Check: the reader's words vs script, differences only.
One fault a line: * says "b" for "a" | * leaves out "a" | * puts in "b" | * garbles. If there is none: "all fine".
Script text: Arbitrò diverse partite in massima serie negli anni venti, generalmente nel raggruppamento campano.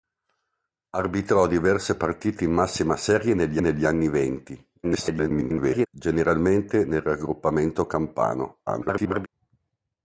* puts in "negli"
* garbles
* garbles